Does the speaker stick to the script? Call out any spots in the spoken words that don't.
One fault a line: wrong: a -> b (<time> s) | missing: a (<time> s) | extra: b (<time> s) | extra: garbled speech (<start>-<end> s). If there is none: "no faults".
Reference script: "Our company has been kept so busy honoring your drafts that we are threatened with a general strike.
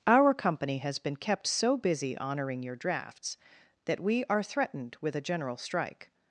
no faults